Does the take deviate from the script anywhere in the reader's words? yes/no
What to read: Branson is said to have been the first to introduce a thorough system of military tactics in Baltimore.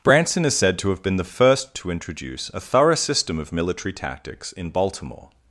no